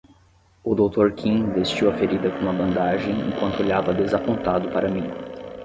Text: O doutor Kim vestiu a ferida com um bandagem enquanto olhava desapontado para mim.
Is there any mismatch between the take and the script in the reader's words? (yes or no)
yes